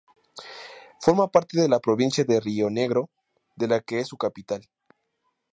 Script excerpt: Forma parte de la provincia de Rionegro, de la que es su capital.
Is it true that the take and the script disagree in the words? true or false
false